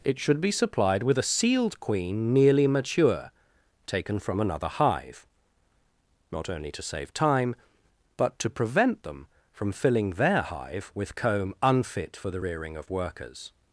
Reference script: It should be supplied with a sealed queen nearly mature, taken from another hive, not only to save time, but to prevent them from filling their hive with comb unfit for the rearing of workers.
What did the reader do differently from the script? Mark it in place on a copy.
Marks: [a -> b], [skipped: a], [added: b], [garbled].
It should be supplied with a sealed queen nearly mature, taken from another hive, not only to save time, but to prevent them from filling their hive with comb unfit for the rearing of workers.